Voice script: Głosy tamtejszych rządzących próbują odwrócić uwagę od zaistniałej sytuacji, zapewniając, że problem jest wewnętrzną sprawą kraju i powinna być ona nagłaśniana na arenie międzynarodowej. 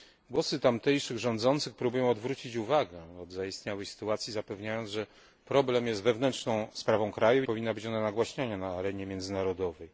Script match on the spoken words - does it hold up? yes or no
yes